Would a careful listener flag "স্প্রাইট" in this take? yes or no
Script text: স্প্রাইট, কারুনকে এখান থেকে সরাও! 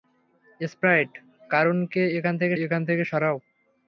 no